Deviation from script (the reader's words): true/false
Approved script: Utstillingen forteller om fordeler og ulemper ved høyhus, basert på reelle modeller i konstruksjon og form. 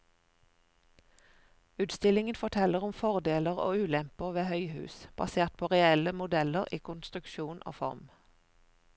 false